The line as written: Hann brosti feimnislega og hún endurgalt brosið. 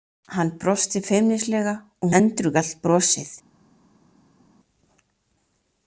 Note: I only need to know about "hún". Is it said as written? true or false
false